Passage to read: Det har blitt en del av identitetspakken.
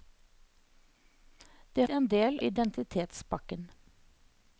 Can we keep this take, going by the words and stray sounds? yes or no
no